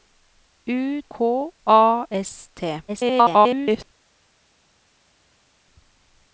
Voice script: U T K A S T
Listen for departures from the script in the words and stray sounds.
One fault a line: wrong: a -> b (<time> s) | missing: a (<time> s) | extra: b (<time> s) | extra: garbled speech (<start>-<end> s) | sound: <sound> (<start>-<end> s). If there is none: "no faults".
missing: T (1.0 s)
extra: garbled speech (2.9-3.8 s)